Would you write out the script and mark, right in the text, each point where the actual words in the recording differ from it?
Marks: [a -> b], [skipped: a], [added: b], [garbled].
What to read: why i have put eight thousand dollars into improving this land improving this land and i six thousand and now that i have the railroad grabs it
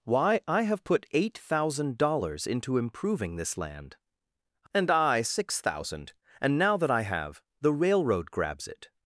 why i have put eight thousand dollars into improving this land [skipped: improving this land] and i six thousand and now that i have the railroad grabs it